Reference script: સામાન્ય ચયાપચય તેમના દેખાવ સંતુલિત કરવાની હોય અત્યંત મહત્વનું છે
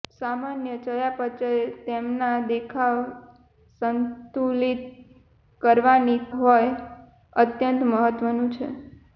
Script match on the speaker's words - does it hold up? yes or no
yes